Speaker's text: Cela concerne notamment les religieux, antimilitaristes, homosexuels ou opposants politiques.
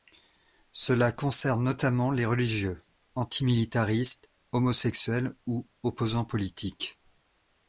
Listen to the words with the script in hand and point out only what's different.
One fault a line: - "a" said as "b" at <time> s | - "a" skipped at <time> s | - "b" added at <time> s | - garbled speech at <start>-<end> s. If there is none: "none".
none